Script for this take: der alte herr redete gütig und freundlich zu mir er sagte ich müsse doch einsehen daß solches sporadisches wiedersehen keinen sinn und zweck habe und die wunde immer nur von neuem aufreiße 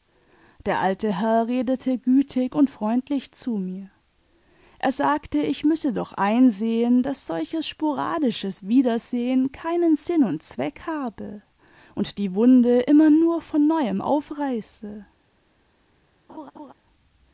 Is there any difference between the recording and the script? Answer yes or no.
no